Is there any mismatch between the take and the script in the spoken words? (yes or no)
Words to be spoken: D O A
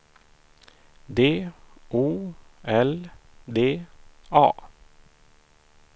yes